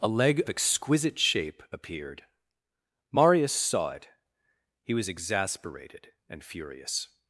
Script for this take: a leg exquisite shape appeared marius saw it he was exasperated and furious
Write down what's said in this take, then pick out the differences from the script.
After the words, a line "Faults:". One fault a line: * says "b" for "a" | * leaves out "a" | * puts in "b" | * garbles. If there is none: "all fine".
a leg exquisite shape appeared marius saw it he was exasperated and furious
Faults:
all fine